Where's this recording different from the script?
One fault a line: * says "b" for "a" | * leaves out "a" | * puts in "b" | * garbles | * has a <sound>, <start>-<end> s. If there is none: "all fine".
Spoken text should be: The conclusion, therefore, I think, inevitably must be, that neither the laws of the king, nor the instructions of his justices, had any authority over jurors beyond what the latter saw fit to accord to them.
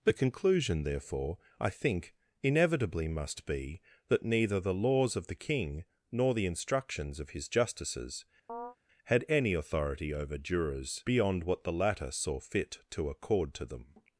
* has a chirp, 8.5-8.8 s